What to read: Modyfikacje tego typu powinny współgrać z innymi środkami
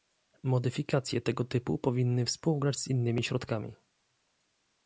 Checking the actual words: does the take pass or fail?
pass